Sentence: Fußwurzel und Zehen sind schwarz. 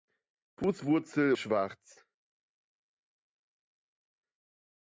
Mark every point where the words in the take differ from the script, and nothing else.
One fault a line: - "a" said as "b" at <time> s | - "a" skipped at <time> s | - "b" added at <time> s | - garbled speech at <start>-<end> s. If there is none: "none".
- "und Zehen sind" skipped at 1.4 s